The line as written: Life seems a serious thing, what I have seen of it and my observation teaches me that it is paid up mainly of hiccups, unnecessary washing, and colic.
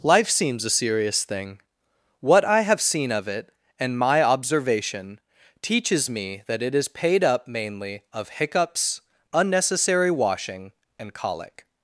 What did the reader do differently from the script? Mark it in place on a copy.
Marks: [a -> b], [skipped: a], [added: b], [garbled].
Life seems a serious thing, what I have seen of it and my observation teaches me that it is paid up mainly of hiccups, unnecessary washing, and colic.